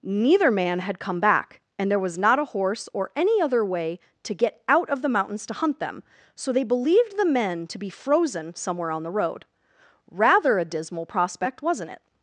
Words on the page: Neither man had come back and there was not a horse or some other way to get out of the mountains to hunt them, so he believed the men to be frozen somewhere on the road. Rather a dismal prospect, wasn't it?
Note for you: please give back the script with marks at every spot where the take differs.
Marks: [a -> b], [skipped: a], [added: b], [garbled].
Neither man had come back and there was not a horse or [some -> any] other way to get out of the mountains to hunt them, so [he -> they] believed the men to be frozen somewhere on the road. Rather a dismal prospect, wasn't it?